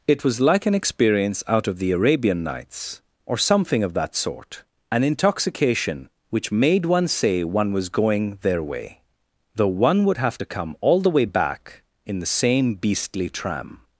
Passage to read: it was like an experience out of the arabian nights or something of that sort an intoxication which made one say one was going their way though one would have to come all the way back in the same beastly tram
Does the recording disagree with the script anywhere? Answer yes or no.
no